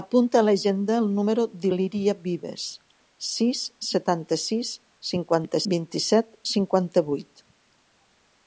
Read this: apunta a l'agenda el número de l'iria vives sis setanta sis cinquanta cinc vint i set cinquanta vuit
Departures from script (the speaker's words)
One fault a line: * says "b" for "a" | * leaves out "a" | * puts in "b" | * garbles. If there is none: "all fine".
* leaves out "cinc"